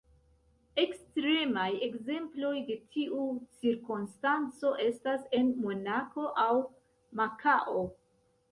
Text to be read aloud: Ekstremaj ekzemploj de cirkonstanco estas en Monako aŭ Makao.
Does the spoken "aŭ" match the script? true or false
true